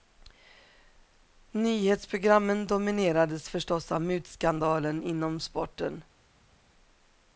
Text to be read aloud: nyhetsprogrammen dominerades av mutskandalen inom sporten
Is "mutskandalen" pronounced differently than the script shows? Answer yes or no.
no